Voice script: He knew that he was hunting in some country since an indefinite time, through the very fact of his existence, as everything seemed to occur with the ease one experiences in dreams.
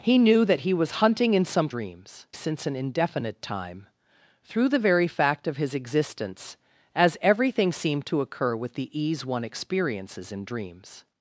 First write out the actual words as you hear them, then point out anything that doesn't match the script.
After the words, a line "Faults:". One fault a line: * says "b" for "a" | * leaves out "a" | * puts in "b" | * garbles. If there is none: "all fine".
He knew that he was hunting in some dreams since an indefinite time, through the very fact of his existence, as everything seemed to occur with the ease one experiences in dreams.
Faults:
* says "dreams" for "country"